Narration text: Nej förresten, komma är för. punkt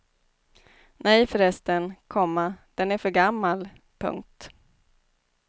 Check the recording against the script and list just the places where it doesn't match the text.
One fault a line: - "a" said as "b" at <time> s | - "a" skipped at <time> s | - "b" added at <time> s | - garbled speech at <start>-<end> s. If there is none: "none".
- "den" added at 2.8 s
- "gammal" added at 3.1 s